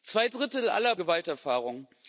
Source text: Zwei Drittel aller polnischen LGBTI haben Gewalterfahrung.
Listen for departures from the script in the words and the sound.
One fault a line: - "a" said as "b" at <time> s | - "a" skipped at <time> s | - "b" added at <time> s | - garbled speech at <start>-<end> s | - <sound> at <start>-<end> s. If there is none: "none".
- "polnischen LGBTI haben" skipped at 0.9 s